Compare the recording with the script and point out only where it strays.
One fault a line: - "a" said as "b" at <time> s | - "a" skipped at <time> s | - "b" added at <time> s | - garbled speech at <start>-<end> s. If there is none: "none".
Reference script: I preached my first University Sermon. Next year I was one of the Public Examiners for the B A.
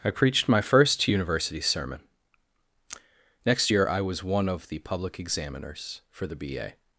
none